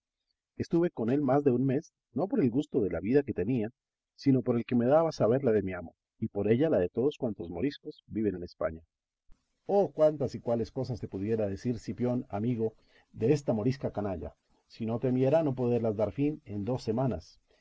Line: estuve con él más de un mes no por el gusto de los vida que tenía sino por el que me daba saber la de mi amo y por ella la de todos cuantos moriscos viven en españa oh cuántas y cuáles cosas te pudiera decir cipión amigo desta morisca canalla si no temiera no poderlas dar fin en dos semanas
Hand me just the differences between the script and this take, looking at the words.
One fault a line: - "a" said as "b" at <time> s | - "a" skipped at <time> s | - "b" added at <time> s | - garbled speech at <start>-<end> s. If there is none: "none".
- "los" said as "la" at 2.9 s